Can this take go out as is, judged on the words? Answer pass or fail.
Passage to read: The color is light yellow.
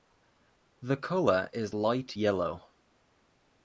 pass